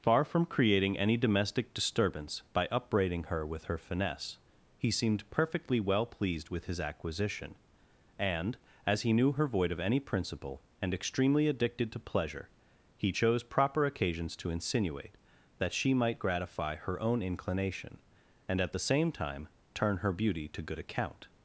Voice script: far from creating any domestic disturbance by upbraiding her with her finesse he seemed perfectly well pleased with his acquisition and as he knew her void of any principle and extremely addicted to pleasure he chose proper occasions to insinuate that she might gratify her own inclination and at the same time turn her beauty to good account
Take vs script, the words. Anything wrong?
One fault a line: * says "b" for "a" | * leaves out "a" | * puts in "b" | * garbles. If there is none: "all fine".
all fine